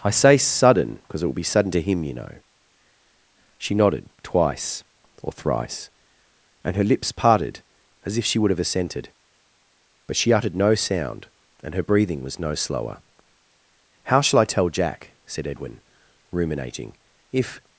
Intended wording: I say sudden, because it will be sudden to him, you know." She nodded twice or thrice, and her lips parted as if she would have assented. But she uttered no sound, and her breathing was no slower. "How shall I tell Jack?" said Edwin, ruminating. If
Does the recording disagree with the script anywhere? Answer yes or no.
no